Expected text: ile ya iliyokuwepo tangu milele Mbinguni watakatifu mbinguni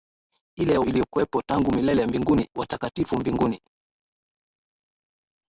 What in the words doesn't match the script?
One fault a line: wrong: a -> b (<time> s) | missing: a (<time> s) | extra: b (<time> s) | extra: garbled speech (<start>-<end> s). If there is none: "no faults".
no faults